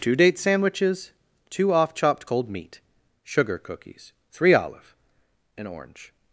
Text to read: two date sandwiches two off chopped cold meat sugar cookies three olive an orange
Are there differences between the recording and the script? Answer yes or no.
no